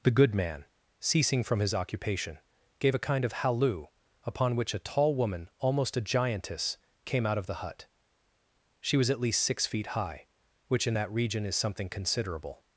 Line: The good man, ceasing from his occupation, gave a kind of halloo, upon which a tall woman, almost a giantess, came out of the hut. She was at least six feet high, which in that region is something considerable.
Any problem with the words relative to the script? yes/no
no